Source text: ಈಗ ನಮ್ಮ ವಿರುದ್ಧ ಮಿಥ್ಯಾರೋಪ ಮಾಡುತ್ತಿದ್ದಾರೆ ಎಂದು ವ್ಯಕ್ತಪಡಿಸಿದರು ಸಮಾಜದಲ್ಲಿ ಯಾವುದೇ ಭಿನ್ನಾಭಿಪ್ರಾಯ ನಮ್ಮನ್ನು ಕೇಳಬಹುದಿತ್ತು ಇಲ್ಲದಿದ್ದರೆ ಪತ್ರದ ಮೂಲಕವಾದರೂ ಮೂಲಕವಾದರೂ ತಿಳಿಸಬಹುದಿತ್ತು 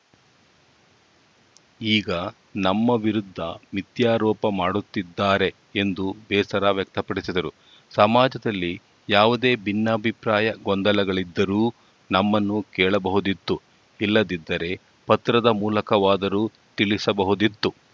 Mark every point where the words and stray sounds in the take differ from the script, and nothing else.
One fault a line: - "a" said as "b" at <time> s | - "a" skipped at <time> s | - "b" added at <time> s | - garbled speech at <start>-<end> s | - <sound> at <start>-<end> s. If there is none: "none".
- "ಬೇಸರ" added at 6.3 s
- "ಗೊಂದಲಗಳಿದ್ದರೂ" added at 10.6 s
- "ಮೂಲಕವಾದರೂ" skipped at 16.4 s